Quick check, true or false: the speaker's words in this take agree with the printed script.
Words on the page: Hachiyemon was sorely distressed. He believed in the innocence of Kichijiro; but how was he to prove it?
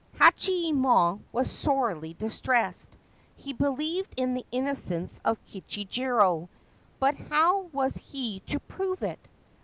true